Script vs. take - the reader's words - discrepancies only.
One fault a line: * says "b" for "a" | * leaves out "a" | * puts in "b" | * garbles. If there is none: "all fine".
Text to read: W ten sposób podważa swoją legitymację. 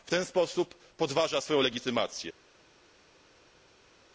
all fine